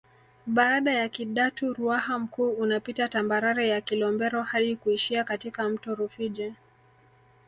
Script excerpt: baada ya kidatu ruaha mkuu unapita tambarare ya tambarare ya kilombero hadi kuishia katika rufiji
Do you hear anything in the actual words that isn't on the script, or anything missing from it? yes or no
yes